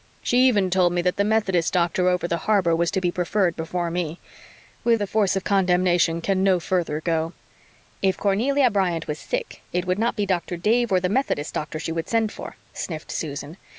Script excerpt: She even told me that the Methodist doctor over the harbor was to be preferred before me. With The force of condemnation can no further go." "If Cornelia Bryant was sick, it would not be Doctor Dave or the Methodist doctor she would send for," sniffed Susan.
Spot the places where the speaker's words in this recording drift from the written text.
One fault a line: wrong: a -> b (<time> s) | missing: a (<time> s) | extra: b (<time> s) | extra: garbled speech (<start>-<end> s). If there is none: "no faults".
no faults